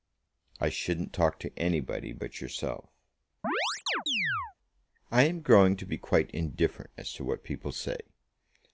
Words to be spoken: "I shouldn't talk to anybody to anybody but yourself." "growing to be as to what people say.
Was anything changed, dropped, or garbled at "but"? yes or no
yes